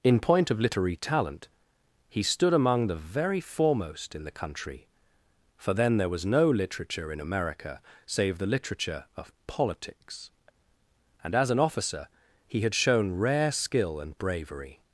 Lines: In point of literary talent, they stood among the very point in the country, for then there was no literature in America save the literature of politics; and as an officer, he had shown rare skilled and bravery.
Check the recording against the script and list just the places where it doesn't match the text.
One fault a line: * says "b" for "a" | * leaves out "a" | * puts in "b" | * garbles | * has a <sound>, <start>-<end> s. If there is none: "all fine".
* says "he" for "they"
* says "foremost" for "point"
* says "skill" for "skilled"